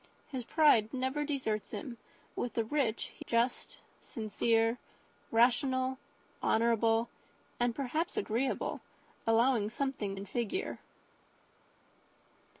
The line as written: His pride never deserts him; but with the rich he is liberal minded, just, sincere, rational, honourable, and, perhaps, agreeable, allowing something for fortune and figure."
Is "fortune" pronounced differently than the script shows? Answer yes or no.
yes